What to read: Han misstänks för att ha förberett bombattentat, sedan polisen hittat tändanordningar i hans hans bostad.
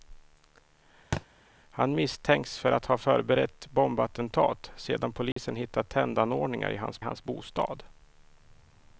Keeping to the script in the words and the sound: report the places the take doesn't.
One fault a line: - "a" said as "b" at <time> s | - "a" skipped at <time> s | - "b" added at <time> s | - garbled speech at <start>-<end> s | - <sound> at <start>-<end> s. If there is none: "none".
- thud at 1.1-1.3 s
- dropout at 5.3-5.4 s